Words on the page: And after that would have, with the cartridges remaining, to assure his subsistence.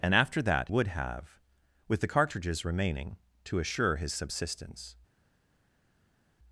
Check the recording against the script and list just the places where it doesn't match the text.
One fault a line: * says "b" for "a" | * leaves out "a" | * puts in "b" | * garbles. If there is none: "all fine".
all fine